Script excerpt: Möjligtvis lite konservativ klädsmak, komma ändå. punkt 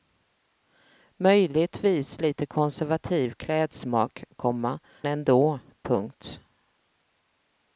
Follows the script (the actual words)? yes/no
yes